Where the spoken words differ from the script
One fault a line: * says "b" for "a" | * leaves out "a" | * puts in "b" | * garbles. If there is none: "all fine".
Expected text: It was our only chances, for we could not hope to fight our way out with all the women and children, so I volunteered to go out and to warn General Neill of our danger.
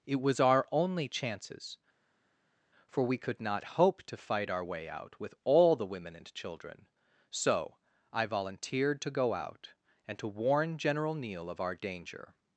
all fine